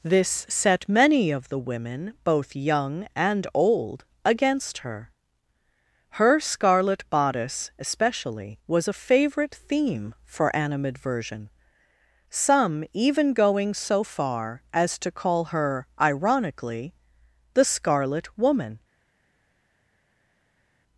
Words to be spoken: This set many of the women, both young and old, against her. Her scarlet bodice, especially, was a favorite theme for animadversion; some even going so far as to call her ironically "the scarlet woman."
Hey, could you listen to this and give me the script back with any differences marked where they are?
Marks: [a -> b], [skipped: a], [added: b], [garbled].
This set many of the women, both young and old, against her. Her scarlet bodice, especially, was a favorite theme for animadversion; some even going so far as to call her ironically "the scarlet woman."